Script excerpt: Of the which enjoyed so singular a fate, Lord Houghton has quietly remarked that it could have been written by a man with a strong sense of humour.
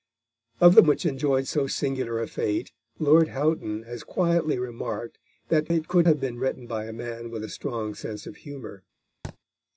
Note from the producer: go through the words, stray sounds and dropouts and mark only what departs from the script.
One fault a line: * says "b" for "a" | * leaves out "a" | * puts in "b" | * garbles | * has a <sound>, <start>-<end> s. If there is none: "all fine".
* has a thud, 9.2-9.4 s